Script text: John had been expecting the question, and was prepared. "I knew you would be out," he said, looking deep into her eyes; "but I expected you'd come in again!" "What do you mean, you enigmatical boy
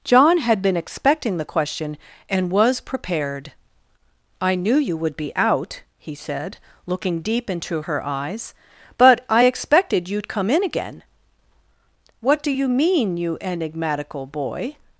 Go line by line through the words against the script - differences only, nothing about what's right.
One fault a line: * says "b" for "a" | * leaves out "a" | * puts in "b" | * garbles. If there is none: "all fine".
all fine